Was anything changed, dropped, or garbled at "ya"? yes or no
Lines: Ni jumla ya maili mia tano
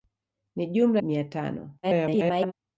yes